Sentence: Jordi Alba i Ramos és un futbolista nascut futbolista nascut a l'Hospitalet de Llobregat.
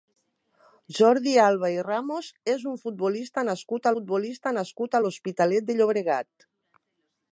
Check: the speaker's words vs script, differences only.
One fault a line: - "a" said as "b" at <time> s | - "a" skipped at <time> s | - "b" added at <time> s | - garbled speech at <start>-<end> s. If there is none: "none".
none